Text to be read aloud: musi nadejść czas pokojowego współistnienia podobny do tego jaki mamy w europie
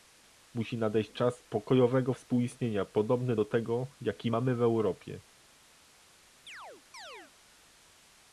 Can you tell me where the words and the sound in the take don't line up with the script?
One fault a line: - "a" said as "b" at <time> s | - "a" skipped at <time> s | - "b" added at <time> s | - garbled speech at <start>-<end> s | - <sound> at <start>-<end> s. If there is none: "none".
- chirp at 6.5-7.3 s